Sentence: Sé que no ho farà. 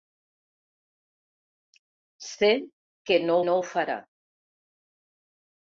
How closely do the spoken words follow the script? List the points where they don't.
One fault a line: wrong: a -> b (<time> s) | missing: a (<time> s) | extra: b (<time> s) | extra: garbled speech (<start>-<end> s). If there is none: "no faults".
extra: no (3.5 s)